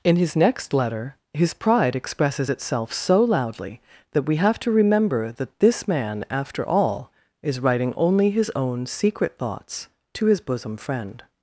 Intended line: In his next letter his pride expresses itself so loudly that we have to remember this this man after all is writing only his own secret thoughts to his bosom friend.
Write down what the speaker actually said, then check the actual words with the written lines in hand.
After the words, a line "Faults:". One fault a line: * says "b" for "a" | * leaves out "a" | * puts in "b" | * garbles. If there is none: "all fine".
In his next letter his pride expresses itself so loudly that we have to remember that this man after all is writing only his own secret thoughts to his bosom friend.
Faults:
* says "that" for "this"